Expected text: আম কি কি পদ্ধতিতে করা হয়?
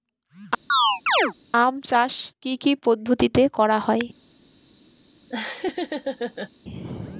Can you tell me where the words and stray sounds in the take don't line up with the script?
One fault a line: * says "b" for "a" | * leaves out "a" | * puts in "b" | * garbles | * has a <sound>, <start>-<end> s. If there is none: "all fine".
* has a chirp, 0.7-1.3 s
* puts in "চাষ"
* has a laugh, 5.3-6.5 s